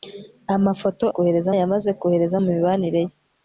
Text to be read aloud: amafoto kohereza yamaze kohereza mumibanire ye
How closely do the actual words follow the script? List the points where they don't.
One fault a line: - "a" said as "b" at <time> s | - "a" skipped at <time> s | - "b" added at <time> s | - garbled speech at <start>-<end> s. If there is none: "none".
none